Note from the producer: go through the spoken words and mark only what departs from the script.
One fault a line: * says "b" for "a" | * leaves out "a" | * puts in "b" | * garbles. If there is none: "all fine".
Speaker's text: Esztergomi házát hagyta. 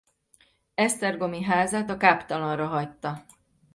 * puts in "a káptalanra"